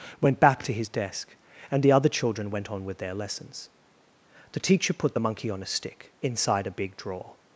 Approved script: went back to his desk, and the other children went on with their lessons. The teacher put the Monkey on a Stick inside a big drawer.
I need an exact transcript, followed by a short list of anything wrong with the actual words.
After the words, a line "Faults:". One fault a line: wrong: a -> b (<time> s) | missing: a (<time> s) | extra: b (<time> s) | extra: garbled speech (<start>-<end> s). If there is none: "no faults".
went back to his desk, and the other children went on with their lessons. The teacher put the Monkey on a Stick inside a big drawer.
Faults:
no faults